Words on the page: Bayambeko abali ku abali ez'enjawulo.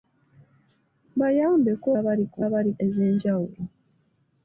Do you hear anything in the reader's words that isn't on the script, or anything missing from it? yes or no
no